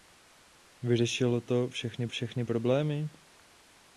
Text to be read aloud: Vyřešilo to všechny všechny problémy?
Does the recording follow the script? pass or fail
pass